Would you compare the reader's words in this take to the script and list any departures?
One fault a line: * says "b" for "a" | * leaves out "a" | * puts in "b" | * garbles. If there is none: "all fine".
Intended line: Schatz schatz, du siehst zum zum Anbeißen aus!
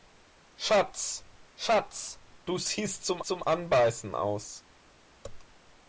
all fine